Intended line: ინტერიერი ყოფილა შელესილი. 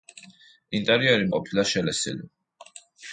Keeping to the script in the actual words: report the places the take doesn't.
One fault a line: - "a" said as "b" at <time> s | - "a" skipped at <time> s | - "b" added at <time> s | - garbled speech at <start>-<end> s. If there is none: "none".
none